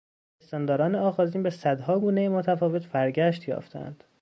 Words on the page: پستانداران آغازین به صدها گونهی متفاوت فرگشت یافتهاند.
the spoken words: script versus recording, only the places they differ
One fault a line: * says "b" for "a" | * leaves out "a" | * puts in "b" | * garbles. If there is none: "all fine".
all fine